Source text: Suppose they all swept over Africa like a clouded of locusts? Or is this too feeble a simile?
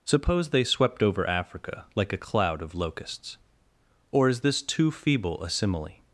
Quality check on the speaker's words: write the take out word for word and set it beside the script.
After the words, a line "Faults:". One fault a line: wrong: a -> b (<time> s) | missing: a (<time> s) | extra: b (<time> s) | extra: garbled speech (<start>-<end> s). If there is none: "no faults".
Suppose they swept over Africa like a cloud of locusts? Or is this too feeble a simile?
Faults:
missing: all (0.6 s)
wrong: clouded -> cloud (2.2 s)